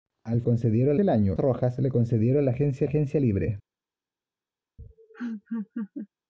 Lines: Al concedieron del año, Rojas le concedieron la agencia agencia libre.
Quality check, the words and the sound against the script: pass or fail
fail